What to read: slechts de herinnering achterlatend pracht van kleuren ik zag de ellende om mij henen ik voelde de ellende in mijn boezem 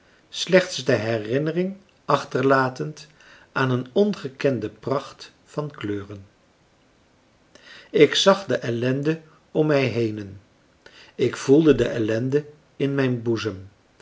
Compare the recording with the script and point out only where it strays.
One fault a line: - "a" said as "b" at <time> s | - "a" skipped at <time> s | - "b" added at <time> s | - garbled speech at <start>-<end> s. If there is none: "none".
- "aan een ongekende" added at 3.5 s